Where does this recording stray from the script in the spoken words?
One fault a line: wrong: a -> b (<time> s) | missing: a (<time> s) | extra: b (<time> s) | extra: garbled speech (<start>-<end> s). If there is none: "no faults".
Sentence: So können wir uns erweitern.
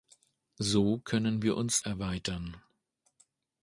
no faults